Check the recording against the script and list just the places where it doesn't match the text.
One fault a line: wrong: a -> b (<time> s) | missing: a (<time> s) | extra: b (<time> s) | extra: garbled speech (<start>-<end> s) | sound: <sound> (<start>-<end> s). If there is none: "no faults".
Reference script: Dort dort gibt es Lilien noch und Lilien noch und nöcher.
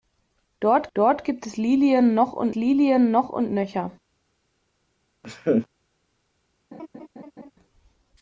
sound: laugh (5.2-5.7 s)
sound: laugh (6.7-7.5 s)